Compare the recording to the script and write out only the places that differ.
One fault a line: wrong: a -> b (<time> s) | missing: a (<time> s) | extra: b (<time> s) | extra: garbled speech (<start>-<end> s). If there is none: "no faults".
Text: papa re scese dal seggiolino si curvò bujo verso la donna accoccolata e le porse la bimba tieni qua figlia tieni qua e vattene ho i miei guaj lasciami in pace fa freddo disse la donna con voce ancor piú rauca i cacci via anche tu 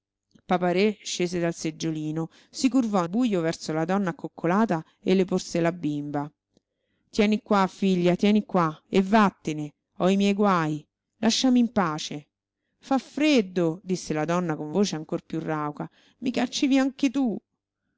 no faults